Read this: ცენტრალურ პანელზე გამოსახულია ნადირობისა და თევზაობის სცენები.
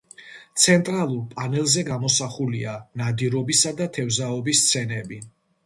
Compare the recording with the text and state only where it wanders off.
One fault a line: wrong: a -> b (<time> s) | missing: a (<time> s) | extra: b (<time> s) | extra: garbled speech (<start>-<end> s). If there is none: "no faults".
no faults